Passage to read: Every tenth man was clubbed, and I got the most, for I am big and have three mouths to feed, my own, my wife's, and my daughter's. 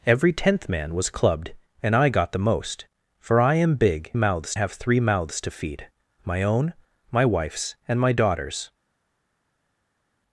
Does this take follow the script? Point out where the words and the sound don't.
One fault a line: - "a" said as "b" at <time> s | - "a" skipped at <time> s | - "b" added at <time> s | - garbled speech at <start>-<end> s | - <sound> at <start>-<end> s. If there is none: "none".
- "and" said as "mouths" at 4.1 s